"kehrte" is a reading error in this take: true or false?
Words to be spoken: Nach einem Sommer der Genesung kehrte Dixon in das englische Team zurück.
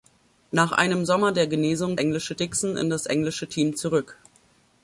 true